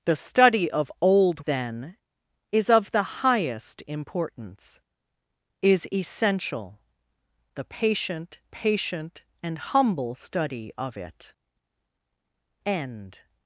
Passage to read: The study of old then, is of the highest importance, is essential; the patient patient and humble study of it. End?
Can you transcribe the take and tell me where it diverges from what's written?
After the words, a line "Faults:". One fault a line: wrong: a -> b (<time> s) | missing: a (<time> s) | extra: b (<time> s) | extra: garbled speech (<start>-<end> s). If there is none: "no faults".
The study of old then, is of the highest importance, is essential; the patient patient and humble study of it. End?
Faults:
no faults